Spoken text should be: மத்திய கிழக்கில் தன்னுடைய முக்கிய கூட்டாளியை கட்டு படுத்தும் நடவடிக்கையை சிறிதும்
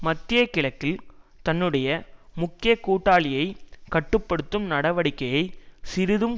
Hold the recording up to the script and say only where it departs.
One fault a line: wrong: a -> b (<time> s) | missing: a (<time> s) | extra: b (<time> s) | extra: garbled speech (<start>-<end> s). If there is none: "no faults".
no faults